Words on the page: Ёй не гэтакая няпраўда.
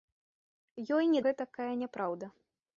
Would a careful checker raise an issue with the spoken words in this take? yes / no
no